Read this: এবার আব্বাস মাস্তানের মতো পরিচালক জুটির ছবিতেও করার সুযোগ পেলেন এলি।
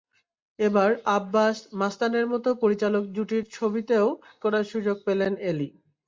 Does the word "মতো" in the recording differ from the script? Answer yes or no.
no